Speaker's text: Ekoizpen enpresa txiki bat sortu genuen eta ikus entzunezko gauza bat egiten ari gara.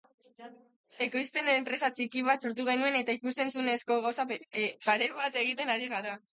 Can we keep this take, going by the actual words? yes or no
no